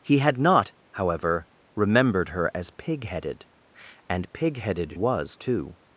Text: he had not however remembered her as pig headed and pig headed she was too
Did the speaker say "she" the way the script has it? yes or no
no